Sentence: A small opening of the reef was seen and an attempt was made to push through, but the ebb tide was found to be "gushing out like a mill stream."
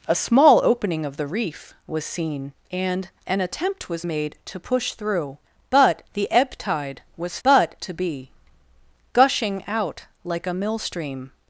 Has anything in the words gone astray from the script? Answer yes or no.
yes